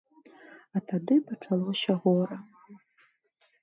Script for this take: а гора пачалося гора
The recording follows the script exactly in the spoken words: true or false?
false